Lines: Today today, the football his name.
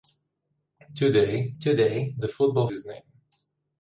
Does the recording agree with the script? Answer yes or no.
yes